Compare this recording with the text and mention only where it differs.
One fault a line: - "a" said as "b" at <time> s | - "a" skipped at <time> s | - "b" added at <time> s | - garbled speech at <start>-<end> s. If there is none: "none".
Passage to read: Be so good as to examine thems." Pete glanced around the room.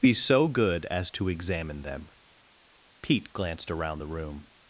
- "thems" said as "them" at 1.8 s